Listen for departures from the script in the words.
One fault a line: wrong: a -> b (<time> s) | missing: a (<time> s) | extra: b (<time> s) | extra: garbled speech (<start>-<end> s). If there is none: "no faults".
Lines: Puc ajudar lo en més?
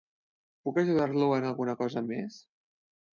extra: alguna cosa (1.5 s)